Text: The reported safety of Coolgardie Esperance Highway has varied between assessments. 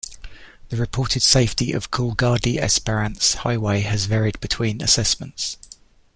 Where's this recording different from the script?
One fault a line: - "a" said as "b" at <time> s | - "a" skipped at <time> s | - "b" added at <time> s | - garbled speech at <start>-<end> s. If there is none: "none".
none